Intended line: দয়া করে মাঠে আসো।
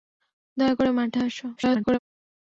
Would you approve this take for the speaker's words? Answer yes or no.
no